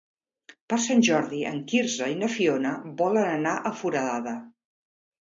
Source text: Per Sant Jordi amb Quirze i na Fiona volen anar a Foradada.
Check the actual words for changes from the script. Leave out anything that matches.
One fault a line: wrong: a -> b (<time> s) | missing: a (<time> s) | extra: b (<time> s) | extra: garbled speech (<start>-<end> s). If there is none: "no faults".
wrong: amb -> en (1.5 s)